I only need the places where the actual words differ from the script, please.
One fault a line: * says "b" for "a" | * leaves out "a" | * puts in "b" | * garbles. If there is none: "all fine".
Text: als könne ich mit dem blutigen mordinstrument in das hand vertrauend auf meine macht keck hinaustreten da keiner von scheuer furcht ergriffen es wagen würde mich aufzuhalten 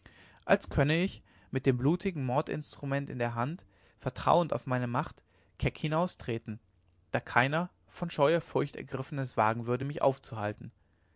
* says "der" for "das"